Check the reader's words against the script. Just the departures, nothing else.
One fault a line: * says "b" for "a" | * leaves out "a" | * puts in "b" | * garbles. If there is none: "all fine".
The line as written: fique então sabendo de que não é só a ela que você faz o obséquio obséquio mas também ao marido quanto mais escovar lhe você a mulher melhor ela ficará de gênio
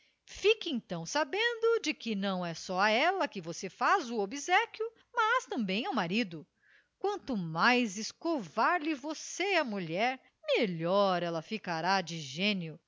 * leaves out "obséquio"